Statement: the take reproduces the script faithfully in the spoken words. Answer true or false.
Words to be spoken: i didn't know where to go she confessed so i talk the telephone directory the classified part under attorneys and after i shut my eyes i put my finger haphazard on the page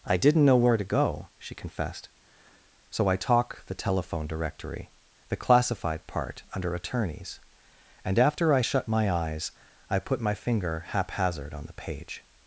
true